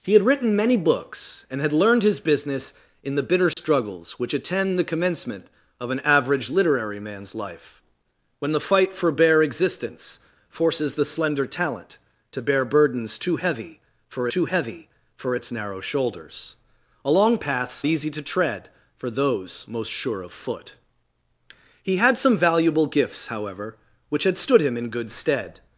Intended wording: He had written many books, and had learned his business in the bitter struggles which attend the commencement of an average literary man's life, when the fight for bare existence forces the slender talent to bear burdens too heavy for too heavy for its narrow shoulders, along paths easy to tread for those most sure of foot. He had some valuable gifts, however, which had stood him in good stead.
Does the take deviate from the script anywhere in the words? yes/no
no